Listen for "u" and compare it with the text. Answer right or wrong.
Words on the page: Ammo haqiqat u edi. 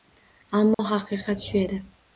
wrong